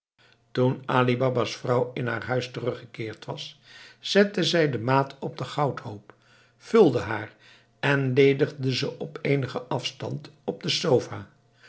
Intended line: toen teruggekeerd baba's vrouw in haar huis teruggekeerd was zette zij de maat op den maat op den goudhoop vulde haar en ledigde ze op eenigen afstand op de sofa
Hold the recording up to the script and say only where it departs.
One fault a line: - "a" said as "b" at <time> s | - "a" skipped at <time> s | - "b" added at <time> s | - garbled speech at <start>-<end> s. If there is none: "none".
- "teruggekeerd" said as "ali" at 0.8 s
- "maat op den" skipped at 5.5 s